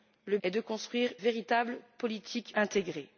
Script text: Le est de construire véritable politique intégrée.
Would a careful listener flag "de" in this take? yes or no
no